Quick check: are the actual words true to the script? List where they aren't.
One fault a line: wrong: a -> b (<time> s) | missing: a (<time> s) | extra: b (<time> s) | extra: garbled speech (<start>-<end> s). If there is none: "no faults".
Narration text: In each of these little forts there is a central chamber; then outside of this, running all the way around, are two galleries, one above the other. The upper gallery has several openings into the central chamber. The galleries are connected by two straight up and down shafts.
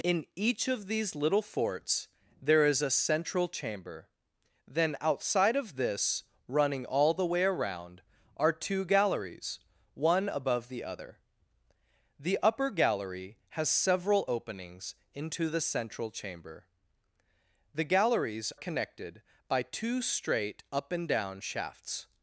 missing: are (18.5 s)